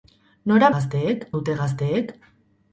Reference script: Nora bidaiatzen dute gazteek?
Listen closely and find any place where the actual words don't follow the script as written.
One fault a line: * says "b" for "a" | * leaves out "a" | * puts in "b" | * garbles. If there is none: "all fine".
* says "gazteek" for "bidaiatzen"